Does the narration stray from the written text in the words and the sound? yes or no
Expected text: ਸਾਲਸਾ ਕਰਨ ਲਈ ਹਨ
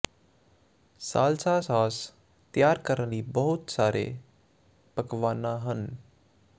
yes